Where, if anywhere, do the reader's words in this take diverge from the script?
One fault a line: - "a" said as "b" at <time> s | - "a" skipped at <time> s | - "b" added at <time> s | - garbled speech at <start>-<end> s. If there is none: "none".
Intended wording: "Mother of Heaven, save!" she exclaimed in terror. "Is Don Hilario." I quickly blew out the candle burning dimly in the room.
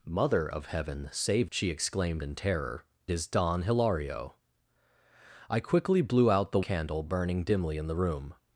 none